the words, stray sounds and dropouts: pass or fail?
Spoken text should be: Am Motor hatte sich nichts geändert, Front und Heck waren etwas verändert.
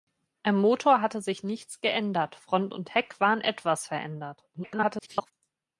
fail